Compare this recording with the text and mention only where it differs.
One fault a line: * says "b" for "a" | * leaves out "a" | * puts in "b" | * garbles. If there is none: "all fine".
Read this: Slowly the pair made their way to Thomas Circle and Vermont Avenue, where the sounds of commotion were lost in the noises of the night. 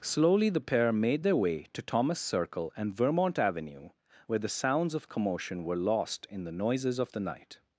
all fine